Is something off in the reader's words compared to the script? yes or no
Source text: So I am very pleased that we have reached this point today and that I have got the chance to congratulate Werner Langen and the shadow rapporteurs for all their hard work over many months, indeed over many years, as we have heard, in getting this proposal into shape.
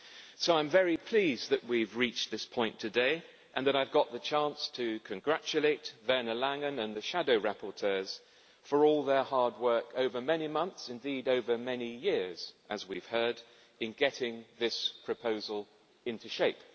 no